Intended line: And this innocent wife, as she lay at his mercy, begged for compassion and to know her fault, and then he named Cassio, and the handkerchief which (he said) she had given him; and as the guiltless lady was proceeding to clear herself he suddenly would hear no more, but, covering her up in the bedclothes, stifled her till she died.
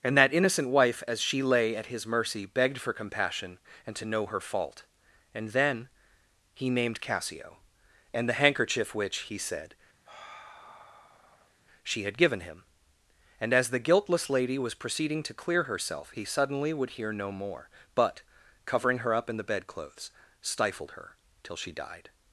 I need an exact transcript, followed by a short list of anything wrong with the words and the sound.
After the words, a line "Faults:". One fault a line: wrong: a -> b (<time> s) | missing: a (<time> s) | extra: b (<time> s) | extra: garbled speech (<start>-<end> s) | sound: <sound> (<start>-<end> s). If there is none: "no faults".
And that innocent wife, as she lay at his mercy, begged for compassion and to know her fault, and then he named Cassio, and the handkerchief which (he said) she had given him; and as the guiltless lady was proceeding to clear herself he suddenly would hear no more, but, covering her up in the bedclothes, stifled her till she died.
Faults:
wrong: this -> that (0.2 s)
sound: sigh (10.1-11.5 s)